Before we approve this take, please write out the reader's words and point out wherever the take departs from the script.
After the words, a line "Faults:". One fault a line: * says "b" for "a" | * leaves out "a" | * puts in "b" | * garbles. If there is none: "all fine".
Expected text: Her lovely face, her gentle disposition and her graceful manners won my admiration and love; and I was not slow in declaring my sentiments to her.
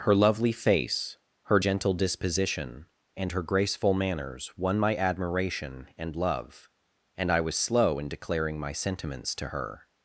Her lovely face, her gentle disposition and her graceful manners won my admiration and love; and I was slow in declaring my sentiments to her.
Faults:
* leaves out "not"